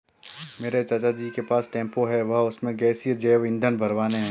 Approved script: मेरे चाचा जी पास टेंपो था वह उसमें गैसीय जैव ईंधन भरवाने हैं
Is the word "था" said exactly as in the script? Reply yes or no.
no